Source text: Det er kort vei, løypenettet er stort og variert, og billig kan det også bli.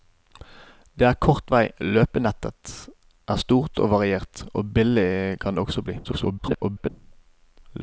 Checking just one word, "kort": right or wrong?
right